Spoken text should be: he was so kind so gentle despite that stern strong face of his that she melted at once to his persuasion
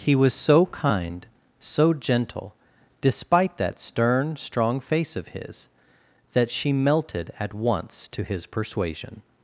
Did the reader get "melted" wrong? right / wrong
right